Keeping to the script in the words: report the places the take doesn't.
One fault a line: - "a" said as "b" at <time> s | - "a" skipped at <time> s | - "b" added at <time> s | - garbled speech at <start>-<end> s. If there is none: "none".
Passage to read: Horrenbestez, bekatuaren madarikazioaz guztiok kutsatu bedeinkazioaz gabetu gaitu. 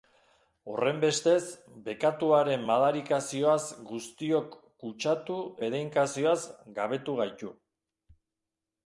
none